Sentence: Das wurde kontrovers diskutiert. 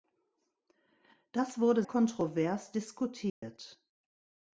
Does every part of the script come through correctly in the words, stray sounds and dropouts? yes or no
no